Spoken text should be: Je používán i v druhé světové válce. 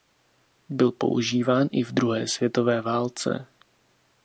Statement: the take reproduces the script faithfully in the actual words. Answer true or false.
false